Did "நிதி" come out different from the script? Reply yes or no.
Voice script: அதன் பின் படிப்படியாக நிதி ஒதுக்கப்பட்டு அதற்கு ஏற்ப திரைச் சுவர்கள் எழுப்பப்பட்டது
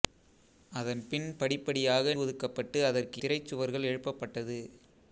yes